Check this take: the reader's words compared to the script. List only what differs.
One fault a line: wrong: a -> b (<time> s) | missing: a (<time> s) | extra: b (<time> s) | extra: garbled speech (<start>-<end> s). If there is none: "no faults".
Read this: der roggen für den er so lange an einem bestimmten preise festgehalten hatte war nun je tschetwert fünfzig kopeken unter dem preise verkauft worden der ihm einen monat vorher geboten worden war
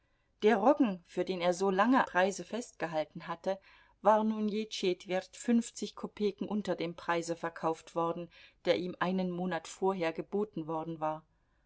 missing: an einem bestimmten (2.1 s)